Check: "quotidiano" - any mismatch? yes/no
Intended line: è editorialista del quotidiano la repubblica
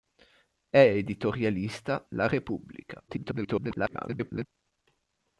yes